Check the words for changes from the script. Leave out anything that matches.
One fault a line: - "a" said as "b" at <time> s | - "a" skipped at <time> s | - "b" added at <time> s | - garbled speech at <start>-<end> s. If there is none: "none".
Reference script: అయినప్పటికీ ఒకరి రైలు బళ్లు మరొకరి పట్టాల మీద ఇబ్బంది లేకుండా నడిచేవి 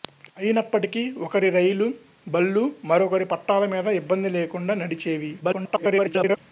- garbled speech at 5.4-6.4 s